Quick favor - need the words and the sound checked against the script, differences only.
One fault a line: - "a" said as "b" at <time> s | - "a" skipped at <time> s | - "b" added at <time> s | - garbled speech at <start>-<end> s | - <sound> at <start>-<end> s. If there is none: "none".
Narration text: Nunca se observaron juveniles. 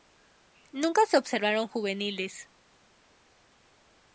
none